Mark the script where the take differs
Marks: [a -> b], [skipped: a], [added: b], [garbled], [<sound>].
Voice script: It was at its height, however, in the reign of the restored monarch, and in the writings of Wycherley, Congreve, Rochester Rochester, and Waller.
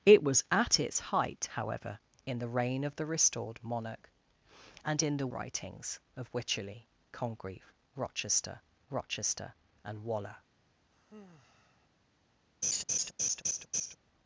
It was at its height, however, in the reign of the restored monarch, and in the writings of Wycherley, Congreve, Rochester Rochester, and Waller. [sigh] [laugh]